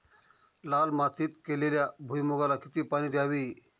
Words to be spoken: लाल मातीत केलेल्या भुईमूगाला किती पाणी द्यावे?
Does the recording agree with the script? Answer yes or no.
yes